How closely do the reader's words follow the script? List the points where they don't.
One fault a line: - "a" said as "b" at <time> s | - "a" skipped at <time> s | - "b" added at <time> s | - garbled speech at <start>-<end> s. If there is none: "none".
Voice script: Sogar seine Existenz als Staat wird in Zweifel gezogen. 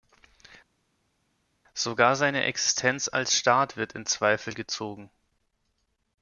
none